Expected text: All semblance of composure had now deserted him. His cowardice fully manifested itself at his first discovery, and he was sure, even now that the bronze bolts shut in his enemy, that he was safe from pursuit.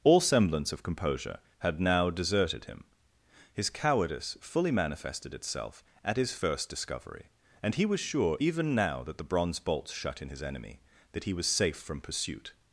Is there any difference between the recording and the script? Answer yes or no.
no